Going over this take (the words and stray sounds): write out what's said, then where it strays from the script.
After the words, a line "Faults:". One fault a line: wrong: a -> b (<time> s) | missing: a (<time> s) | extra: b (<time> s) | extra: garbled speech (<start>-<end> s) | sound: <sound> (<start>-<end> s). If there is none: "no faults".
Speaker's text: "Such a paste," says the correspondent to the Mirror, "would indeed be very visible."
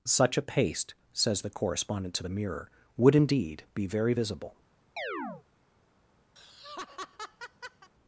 "Such a paste," says the correspondent to the Mirror, "would indeed be very visible."
Faults:
sound: chirp (5.0-5.4 s)
sound: laugh (6.4-7.9 s)